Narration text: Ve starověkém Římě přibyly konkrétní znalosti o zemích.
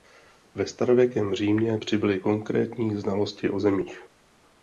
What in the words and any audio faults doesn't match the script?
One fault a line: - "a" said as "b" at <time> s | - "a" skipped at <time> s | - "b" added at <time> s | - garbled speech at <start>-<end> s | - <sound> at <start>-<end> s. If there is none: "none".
none